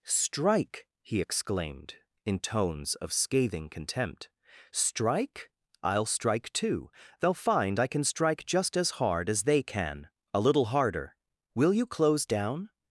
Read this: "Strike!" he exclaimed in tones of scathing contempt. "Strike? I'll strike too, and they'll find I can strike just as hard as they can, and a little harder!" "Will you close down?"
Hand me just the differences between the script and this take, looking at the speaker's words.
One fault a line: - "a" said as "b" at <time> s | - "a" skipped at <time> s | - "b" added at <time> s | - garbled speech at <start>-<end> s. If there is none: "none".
- "and" skipped at 6.9 s
- "and" skipped at 10.1 s